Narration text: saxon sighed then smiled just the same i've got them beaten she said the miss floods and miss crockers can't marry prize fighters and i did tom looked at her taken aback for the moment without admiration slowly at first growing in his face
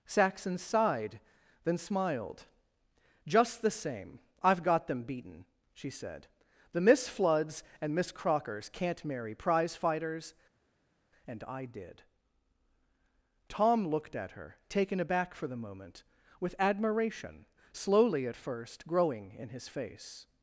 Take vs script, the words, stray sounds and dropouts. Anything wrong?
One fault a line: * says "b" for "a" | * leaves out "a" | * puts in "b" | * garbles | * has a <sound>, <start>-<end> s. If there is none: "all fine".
* says "with" for "without"